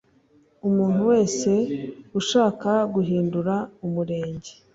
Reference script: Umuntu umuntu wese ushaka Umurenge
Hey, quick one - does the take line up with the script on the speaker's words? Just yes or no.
no